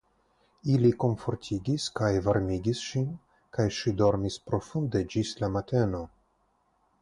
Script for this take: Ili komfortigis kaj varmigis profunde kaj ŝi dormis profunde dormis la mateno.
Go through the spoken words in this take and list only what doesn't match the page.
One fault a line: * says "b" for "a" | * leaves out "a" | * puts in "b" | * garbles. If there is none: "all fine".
* says "ŝin" for "profunde"
* says "ĝis" for "dormis"